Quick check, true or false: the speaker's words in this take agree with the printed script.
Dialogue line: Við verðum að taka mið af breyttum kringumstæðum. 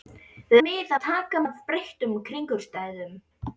false